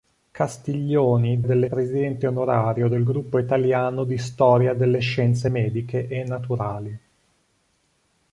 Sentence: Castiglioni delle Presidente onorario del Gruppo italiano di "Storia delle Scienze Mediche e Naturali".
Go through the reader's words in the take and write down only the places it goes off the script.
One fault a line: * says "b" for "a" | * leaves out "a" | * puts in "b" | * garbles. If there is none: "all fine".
all fine